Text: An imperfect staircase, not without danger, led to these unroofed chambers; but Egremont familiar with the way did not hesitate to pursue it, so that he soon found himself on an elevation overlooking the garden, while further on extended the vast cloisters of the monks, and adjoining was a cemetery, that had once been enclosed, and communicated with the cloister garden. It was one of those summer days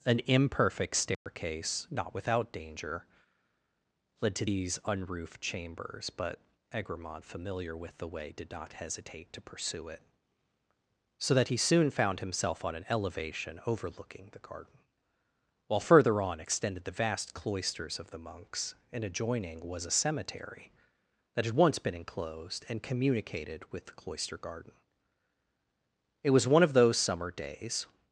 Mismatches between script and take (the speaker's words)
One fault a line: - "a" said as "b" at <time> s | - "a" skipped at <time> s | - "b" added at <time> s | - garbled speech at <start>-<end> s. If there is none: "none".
none